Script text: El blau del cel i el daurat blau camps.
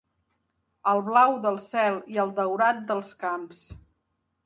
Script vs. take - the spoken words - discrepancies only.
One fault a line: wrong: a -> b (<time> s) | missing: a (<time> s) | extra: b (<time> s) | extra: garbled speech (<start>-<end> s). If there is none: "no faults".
wrong: blau -> dels (2.9 s)